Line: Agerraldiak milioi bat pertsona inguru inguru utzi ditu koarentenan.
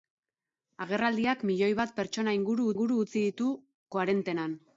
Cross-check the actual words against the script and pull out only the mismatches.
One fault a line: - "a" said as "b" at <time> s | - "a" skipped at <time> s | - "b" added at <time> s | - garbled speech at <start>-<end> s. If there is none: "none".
none